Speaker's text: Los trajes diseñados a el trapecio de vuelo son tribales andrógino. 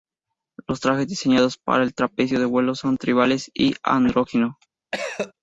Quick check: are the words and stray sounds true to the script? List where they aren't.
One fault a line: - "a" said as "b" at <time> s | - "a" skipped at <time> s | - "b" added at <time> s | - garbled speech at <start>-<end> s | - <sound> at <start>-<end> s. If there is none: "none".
- "a" said as "para" at 1.6 s
- "y" added at 3.5 s
- cough at 4.9-5.3 s